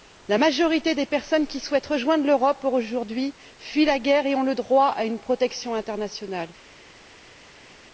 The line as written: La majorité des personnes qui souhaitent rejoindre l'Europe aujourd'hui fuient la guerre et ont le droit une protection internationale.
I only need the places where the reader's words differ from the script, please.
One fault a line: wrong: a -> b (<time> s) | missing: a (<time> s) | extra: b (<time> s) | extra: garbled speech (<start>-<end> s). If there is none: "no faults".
extra: à (4.9 s)